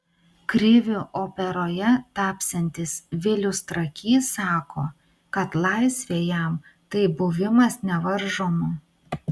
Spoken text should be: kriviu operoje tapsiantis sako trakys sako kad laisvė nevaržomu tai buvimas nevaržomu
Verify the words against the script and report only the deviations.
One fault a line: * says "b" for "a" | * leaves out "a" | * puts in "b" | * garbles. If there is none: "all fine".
* says "vilius" for "sako"
* says "jam" for "nevaržomu"